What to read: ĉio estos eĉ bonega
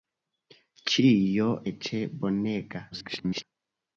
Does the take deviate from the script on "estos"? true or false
true